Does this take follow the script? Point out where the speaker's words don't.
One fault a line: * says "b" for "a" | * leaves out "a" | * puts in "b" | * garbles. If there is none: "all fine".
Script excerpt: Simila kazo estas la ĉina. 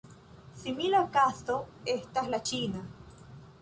all fine